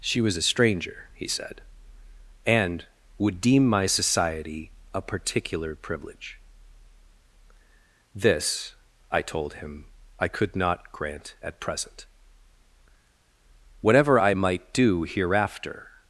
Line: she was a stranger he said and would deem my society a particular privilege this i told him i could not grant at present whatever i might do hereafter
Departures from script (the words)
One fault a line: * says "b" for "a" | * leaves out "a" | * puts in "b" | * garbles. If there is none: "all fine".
all fine